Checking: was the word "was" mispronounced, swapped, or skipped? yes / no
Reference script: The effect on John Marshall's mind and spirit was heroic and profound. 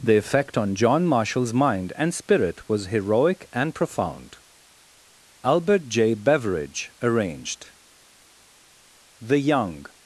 no